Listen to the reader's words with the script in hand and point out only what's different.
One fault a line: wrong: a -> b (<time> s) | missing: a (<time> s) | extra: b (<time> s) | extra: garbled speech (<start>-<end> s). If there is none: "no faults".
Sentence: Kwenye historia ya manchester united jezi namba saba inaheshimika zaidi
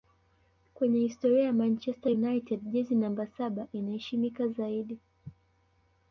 no faults